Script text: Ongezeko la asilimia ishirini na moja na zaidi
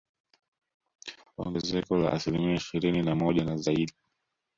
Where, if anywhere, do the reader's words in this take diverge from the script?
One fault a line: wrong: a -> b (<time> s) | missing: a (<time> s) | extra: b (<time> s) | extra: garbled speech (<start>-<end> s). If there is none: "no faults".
no faults